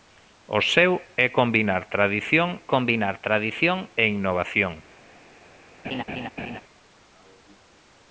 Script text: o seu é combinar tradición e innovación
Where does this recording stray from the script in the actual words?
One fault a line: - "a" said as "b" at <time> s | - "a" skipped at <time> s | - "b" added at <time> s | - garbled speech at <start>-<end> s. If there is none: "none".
- "combinar tradición" added at 2.7 s